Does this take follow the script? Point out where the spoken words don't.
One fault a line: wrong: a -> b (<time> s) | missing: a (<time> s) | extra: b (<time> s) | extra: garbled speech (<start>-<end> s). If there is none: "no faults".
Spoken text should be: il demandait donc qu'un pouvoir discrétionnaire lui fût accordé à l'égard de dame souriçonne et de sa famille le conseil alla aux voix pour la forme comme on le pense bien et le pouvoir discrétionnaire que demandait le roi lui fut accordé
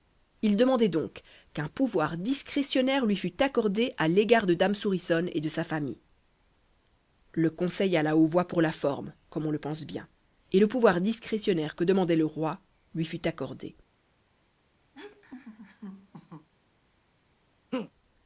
no faults